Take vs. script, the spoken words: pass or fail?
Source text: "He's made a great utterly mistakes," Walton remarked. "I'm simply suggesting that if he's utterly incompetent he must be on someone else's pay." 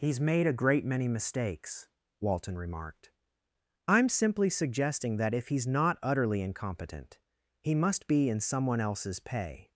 fail